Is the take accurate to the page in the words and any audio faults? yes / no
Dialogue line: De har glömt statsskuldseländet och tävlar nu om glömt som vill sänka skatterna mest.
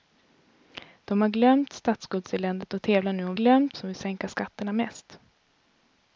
yes